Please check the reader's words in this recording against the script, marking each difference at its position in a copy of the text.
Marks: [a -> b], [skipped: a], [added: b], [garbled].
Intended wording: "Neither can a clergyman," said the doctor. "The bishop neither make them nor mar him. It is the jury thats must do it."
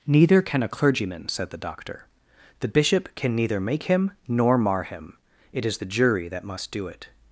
"Neither can a clergyman," said the doctor. "The bishop [added: can] neither make [them -> him] nor mar him. It is the jury [thats -> that] must do it."